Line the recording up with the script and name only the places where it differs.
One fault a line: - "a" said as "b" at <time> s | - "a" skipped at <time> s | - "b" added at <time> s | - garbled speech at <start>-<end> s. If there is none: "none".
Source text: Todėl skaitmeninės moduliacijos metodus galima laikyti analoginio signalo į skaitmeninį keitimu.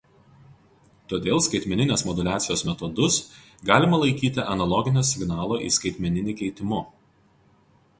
none